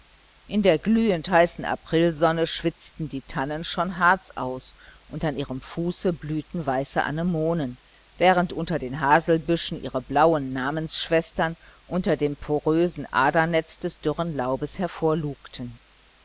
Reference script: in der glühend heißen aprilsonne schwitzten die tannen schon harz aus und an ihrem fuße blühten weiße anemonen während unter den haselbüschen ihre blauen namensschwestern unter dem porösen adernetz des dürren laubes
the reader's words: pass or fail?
pass